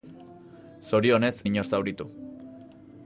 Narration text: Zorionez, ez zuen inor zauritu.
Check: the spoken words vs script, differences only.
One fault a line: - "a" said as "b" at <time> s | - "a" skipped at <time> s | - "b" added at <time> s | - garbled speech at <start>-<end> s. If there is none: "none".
- "ez zuen" skipped at 1.4 s